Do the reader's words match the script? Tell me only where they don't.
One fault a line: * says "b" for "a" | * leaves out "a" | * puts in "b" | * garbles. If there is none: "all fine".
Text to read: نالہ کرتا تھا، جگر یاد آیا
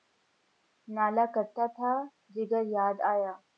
all fine